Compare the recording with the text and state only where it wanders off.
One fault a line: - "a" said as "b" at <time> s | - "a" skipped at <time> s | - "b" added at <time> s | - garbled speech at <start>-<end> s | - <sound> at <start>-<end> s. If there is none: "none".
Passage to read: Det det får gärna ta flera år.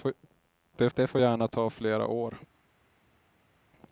none